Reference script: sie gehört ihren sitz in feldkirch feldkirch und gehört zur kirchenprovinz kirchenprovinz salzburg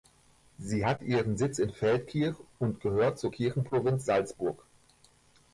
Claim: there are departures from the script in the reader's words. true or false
true